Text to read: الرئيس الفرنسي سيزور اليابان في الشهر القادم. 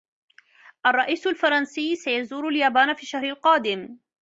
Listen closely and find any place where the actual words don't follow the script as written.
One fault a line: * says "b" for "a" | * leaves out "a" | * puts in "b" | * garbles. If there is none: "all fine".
all fine